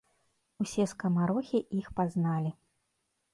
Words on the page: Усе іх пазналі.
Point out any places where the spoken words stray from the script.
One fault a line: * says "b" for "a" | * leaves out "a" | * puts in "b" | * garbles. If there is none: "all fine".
* puts in "скамарохі"